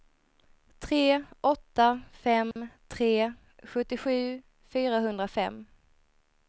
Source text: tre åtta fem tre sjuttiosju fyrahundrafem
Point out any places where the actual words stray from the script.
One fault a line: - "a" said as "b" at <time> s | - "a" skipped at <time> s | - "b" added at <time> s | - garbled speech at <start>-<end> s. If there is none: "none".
none